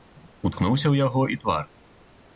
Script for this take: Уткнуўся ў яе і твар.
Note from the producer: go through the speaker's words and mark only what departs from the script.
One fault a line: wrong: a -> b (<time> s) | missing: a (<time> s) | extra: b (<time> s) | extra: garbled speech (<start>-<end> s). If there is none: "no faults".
wrong: яе -> яго (1.1 s)